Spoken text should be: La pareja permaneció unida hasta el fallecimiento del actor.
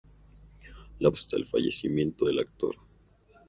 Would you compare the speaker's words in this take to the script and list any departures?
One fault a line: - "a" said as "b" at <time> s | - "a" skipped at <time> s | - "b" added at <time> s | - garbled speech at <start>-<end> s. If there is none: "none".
- "pareja permaneció unida" skipped at 1.1 s